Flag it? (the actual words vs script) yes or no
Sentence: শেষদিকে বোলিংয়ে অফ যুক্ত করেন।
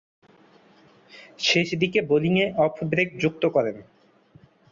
yes